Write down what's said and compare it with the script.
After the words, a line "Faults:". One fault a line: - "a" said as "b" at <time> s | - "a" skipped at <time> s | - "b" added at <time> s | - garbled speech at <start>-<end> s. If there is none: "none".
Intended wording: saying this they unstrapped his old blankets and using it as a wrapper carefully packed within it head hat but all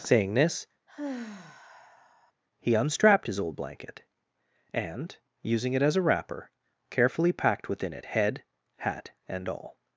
saying this he unstrapped his old blanket and using it as a wrapper carefully packed within it head hat and all
Faults:
- "they" said as "he" at 2.6 s
- "blankets" said as "blanket" at 3.6 s
- "but" said as "and" at 9.3 s